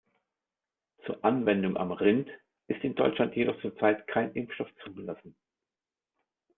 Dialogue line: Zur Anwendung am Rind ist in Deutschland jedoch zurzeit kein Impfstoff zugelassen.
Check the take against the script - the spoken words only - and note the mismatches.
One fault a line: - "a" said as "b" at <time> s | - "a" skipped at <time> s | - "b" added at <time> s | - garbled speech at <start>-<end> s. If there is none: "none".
none